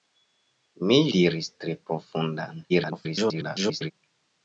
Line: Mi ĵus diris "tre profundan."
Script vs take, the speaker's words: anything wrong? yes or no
yes